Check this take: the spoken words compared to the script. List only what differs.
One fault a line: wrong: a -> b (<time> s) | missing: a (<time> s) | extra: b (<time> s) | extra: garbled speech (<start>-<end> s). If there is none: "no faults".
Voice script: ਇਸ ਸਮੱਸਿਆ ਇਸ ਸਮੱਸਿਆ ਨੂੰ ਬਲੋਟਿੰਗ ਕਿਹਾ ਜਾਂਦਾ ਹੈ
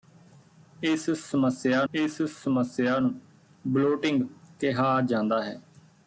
no faults